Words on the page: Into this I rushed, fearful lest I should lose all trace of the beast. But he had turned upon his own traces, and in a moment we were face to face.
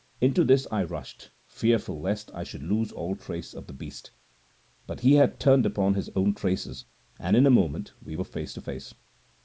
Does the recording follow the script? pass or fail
pass